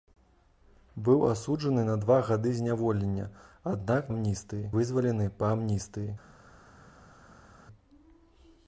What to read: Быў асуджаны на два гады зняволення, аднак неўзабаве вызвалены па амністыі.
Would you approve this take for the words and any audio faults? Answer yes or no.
no